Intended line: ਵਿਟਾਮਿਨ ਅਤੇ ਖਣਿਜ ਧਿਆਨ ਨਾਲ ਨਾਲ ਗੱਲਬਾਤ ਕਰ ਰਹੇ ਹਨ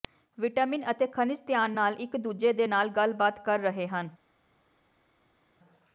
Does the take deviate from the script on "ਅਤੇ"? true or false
false